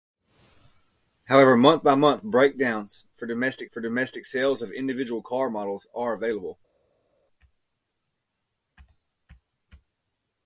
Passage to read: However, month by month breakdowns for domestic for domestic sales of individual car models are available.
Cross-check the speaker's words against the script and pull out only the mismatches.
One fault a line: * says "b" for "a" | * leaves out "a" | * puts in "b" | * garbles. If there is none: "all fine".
all fine